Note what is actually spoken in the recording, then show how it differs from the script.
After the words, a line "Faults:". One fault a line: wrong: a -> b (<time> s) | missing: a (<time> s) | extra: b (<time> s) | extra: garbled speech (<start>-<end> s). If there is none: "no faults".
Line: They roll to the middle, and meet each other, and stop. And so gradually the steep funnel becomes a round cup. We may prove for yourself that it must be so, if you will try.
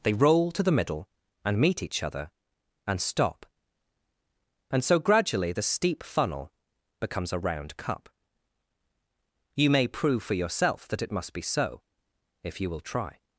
They roll to the middle, and meet each other, and stop. And so gradually the steep funnel becomes a round cup. You may prove for yourself that it must be so, if you will try.
Faults:
wrong: We -> You (9.6 s)